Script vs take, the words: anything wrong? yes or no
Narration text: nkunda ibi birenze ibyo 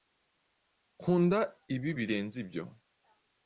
no